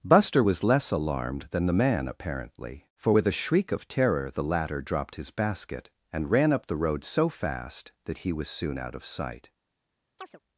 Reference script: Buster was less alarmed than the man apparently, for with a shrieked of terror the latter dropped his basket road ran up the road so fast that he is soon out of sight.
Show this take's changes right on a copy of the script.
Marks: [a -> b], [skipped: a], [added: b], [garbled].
Buster was less alarmed than the man apparently, for with a [shrieked -> shriek] of terror the latter dropped his basket [road -> and] ran up the road so fast that he [is -> was] soon out of sight.